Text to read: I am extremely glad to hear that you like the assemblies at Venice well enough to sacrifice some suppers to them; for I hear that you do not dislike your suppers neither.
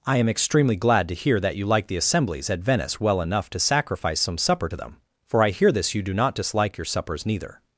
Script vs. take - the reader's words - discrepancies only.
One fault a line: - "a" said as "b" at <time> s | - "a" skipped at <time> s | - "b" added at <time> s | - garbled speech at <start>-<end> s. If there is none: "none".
- "suppers" said as "supper" at 4.4 s
- "that" said as "this" at 5.7 s